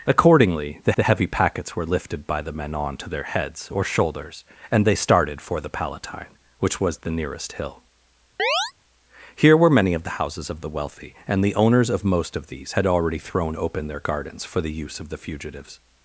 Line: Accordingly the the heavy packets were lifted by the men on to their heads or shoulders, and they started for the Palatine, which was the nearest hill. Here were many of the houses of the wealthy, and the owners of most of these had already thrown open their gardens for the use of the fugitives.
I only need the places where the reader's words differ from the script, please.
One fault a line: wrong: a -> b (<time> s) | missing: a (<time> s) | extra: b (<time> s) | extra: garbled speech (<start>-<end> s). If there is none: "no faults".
no faults